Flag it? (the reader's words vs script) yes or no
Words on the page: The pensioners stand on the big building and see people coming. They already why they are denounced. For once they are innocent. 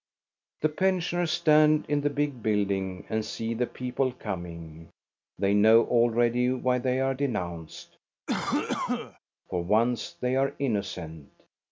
yes